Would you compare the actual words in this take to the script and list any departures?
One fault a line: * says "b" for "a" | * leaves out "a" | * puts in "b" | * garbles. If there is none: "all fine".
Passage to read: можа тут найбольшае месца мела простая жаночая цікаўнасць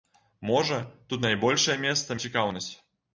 * leaves out "мела простая жаночая"